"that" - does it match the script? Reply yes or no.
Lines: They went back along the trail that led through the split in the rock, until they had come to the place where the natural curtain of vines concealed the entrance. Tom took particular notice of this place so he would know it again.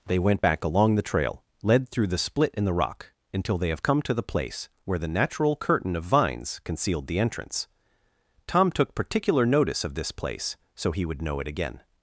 no